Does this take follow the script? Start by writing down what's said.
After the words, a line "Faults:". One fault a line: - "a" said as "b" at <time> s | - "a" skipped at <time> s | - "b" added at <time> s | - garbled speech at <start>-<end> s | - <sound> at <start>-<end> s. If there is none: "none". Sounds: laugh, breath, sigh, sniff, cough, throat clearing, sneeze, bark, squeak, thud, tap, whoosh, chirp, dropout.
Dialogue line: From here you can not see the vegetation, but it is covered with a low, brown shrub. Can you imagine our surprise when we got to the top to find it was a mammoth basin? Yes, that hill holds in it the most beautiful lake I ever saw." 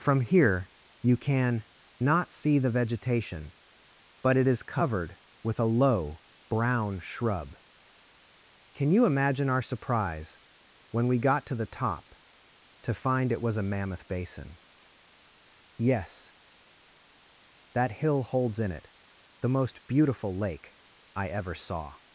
From here you can not see the vegetation, but it is covered with a low, brown shrub. Can you imagine our surprise when we got to the top to find it was a mammoth basin? Yes, that hill holds in it the most beautiful lake I ever saw."
Faults:
none